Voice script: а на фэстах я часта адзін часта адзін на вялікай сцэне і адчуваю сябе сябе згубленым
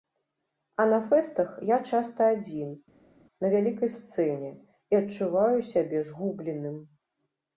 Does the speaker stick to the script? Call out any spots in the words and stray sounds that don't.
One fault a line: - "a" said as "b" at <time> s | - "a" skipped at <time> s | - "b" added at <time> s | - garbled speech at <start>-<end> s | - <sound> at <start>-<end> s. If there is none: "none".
- "часта адзін" skipped at 2.7 s
- "сябе" skipped at 6.1 s